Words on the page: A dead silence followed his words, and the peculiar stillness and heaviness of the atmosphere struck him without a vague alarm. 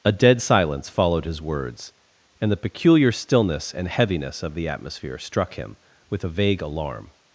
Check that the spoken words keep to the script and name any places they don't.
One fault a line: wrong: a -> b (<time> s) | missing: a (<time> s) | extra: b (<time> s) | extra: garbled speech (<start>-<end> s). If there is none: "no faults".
wrong: without -> with (6.1 s)